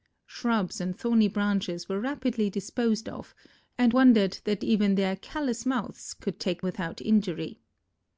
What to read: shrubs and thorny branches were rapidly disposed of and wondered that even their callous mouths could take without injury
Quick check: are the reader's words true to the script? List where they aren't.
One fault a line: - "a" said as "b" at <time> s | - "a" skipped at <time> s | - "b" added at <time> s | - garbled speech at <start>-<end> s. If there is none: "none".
none